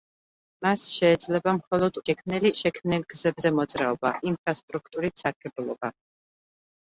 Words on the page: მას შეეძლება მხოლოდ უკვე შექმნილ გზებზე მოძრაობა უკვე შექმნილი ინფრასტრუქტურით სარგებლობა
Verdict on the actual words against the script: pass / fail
fail